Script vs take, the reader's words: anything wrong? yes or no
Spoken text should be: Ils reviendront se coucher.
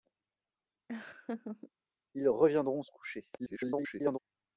yes